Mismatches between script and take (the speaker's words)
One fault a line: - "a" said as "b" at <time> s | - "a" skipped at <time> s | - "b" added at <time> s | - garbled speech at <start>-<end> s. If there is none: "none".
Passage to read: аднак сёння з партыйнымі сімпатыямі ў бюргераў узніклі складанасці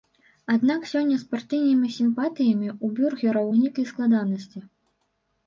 none